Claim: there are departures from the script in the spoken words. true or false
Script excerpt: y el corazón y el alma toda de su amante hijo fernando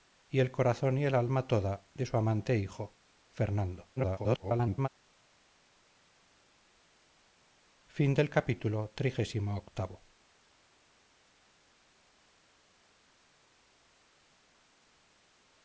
true